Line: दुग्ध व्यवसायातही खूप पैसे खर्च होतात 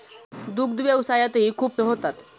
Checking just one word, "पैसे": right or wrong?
wrong